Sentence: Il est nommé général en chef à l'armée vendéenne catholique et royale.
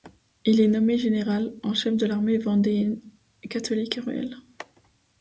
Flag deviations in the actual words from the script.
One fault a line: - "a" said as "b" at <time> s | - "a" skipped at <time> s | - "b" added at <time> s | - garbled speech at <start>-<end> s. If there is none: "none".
- "à" said as "de" at 1.9 s